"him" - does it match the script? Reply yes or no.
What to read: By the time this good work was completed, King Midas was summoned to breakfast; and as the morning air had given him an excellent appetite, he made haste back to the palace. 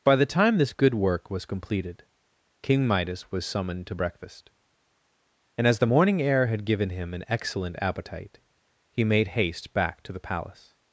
yes